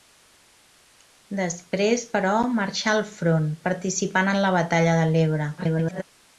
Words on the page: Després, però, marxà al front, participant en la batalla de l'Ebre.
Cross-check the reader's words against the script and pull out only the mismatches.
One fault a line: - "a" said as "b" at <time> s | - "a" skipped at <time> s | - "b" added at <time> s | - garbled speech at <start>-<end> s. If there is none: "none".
- garbled speech at 5.6-6.0 s